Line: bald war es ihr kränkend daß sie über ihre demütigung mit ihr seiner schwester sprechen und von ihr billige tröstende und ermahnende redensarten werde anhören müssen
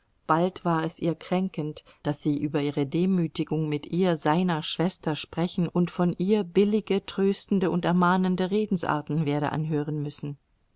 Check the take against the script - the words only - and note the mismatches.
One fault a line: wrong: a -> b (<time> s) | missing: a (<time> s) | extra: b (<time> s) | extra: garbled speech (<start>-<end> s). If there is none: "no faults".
no faults